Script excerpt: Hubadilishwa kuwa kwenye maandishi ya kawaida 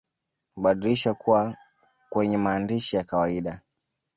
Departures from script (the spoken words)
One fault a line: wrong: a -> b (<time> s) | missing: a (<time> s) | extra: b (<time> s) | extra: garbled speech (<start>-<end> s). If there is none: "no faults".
no faults